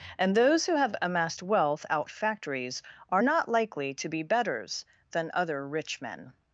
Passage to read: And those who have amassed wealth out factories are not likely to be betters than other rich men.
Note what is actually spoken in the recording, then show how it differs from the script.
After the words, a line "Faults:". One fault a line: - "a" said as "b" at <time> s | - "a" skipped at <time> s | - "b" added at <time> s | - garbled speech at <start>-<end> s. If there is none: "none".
And those who have amassed wealth out factories are not likely to be betters than other rich men.
Faults:
none